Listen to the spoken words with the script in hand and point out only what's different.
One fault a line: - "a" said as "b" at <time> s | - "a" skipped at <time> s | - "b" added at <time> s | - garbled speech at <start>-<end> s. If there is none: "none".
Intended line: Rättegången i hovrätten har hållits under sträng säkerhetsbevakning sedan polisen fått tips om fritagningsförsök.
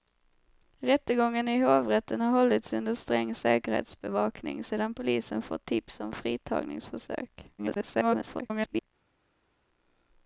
- garbled speech at 7.6-8.9 s